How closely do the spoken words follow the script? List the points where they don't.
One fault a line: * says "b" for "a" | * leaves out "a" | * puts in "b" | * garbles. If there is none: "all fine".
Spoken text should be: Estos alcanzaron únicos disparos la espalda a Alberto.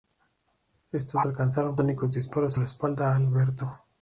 all fine